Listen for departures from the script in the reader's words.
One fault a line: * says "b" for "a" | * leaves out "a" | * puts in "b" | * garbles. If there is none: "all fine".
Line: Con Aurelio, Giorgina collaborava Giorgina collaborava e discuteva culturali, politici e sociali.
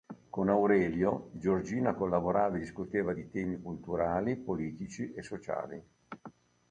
* says "e discuteva di temi" for "Giorgina collaborava e discuteva"